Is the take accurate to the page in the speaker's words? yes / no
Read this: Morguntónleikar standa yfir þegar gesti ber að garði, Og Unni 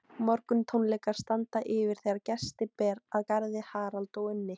no